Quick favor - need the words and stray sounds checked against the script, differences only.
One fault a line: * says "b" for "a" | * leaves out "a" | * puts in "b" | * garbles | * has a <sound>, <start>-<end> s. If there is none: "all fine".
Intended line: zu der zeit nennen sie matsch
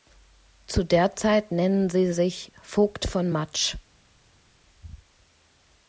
* puts in "sich vogt von"